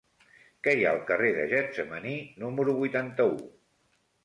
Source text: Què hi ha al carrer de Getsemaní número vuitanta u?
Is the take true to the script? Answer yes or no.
yes